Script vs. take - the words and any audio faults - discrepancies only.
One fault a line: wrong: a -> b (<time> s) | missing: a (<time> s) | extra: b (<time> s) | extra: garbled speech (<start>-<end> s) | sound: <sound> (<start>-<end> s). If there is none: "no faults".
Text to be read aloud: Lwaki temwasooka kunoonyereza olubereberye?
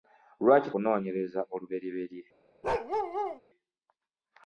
missing: temwasooka (0.7 s)
sound: bark (2.6-3.4 s)